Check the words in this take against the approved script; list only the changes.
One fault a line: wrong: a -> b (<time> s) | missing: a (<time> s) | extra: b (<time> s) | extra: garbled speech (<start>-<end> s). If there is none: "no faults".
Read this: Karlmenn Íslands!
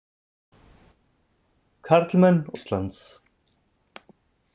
no faults